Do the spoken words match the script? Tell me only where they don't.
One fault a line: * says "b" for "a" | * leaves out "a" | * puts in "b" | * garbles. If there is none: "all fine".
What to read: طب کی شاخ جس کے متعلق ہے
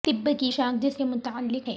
all fine